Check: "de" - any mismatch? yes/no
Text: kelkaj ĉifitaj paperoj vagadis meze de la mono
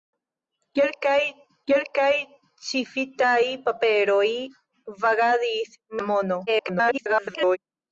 yes